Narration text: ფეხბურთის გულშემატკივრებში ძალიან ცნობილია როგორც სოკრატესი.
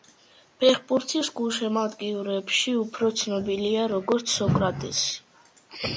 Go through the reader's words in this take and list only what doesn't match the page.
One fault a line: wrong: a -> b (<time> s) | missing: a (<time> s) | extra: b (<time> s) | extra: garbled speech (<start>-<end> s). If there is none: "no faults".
wrong: ძალიან -> უფრო (2.8 s)